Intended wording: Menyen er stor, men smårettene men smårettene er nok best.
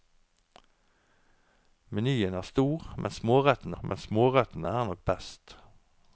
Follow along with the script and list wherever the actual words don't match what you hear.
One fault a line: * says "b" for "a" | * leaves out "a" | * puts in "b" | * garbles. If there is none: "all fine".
all fine